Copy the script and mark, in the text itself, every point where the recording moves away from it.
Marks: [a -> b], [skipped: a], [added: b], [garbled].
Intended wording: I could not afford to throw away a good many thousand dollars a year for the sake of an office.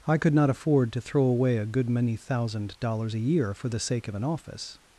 I could not afford to throw away a good many thousand dollars a year for the sake of an office.